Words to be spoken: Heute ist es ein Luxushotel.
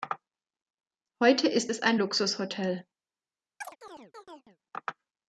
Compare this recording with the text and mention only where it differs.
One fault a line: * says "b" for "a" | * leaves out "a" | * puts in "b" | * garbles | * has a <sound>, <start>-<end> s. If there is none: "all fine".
* has a chirp, 3.6-4.6 s